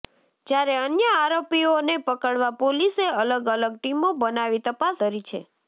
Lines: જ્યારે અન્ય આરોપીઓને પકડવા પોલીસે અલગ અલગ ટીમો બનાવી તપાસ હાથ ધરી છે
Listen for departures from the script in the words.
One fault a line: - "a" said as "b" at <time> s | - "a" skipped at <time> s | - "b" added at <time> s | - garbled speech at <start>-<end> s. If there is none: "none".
- "હાથ" skipped at 5.0 s